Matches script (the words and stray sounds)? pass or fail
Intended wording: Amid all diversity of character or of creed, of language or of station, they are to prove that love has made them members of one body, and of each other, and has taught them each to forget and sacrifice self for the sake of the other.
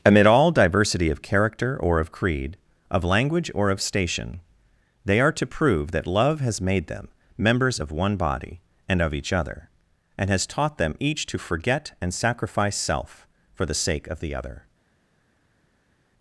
pass